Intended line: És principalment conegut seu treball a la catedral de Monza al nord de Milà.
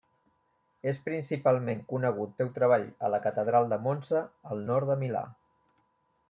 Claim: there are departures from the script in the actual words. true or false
false